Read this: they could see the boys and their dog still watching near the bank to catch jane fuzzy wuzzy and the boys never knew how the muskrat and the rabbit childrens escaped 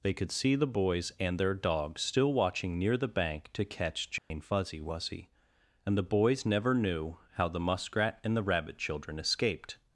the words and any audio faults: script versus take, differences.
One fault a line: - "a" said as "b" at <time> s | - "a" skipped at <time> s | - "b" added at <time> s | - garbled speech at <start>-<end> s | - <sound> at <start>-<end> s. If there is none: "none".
- dropout at 4.2-4.3 s
- "childrens" said as "children" at 8.8 s